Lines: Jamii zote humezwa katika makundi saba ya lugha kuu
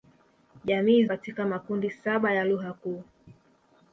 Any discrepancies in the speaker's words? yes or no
yes